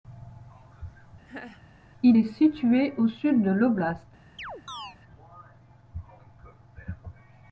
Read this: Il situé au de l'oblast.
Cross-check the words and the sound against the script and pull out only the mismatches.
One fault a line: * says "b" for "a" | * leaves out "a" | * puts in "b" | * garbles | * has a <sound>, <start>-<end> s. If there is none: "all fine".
* has a laugh, 1.3-1.6 s
* puts in "est"
* puts in "sud"
* has a chirp, 4.4-5.0 s